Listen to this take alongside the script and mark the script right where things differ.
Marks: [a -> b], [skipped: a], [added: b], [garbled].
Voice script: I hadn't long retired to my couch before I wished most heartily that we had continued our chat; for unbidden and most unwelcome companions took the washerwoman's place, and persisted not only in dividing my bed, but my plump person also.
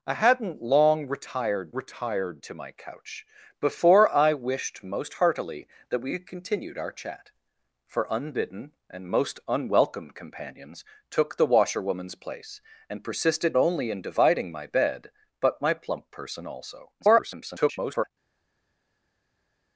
I hadn't long retired [added: retired] to my couch before I wished most heartily that we had continued our chat; for unbidden and most unwelcome companions took the washerwoman's place, and persisted [skipped: not] only in dividing my bed, but my plump person also. [garbled]